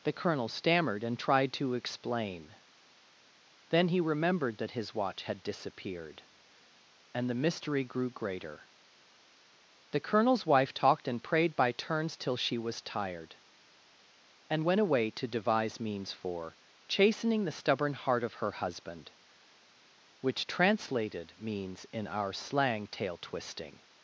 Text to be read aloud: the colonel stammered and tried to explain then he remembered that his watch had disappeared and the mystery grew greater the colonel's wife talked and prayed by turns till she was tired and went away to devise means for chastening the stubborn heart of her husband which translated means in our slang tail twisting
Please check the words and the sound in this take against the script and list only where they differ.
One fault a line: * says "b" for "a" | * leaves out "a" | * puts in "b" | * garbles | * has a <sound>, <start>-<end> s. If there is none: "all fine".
all fine